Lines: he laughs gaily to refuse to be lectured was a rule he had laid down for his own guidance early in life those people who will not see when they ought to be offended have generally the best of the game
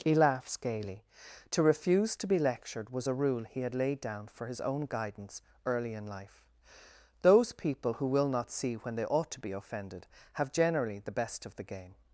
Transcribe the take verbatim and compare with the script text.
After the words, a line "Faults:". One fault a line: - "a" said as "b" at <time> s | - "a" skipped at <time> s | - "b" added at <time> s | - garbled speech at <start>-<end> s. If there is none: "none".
he laughs gaily to refuse to be lectured was a rule he had laid down for his own guidance early in life those people who will not see when they ought to be offended have generally the best of the game
Faults:
none